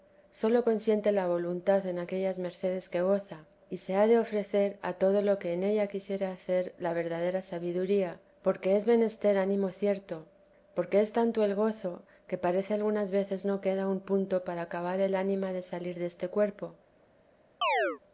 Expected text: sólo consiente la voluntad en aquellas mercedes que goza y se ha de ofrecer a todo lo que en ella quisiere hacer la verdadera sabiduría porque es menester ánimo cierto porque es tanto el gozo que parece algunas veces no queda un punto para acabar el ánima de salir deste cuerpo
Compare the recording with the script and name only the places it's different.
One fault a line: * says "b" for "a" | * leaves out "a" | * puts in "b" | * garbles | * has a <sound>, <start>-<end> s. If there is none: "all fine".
* has a chirp, 17.6-18.0 s